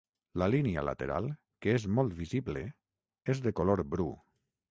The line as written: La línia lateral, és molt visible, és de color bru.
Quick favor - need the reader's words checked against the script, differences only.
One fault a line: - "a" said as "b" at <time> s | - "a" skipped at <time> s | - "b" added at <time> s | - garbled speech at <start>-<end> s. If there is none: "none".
- "que" added at 1.6 s